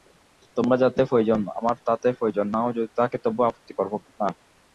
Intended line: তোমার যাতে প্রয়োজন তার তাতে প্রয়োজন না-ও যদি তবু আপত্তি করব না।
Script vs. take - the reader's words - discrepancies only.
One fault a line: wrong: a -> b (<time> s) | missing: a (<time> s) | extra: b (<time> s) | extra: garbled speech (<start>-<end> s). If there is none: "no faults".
wrong: তার -> আমার (1.6 s)
extra: থাকে (3.0 s)